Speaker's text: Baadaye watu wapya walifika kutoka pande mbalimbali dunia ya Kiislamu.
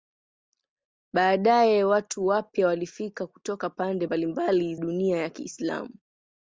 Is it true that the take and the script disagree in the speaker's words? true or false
false